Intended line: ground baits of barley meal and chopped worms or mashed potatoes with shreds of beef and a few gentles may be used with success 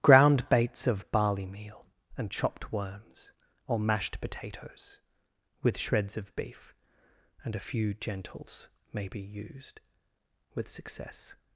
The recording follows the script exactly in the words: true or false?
true